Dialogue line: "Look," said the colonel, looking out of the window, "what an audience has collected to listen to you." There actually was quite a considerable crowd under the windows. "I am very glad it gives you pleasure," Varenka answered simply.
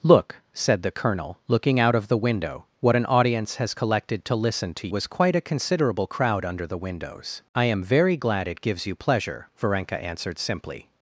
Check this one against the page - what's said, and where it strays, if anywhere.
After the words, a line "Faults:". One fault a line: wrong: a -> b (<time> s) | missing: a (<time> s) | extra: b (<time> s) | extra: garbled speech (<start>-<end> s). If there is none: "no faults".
"Look," said the colonel, looking out of the window, "what an audience has collected to listen to was quite a considerable crowd under the windows. "I am very glad it gives you pleasure," Varenka answered simply.
Faults:
missing: you There actually (4.9 s)